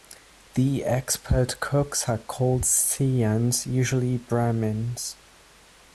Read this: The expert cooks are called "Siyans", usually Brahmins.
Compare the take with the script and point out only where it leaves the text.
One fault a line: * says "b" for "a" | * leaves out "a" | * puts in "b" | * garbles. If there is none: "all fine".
all fine